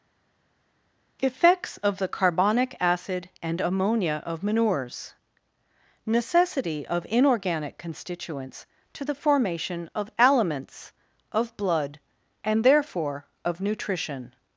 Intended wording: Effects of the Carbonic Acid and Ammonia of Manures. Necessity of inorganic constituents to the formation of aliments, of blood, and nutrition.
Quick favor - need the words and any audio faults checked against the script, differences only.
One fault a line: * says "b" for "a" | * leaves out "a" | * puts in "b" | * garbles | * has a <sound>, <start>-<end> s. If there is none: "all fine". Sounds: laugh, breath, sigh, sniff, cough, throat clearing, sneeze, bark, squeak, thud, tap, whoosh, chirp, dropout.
* puts in "therefore of"